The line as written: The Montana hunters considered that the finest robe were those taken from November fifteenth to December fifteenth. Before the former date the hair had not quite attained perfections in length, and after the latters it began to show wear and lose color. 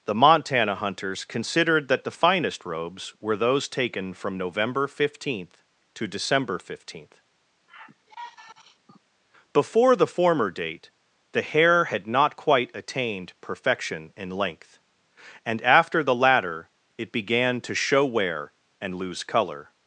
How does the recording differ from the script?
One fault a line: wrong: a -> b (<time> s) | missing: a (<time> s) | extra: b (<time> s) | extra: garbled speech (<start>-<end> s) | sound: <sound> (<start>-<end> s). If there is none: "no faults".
wrong: robe -> robes (2.6 s)
sound: sigh (7.7-9.0 s)
wrong: perfections -> perfection (13.4 s)
wrong: latters -> latter (16.1 s)